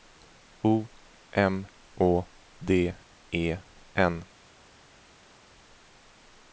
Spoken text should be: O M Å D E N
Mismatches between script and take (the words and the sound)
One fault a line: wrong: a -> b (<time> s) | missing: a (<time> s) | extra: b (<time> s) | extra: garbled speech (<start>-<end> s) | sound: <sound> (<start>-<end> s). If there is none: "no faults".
no faults